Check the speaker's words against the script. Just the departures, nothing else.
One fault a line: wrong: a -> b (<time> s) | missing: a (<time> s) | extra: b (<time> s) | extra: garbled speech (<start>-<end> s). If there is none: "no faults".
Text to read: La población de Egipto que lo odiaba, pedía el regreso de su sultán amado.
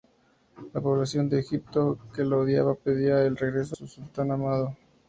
missing: de (3.8 s)